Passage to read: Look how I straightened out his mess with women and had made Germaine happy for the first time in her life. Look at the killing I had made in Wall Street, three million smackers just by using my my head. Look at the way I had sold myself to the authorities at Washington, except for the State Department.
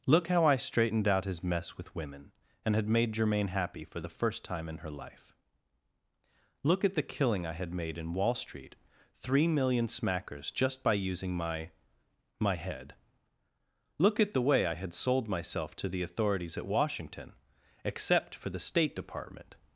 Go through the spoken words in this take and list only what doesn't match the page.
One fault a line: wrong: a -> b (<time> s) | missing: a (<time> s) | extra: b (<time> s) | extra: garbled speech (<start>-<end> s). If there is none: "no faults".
no faults